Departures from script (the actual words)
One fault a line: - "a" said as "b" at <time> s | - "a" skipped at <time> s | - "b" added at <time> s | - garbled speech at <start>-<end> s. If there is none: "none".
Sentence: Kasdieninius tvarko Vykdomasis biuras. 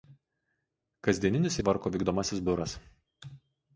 none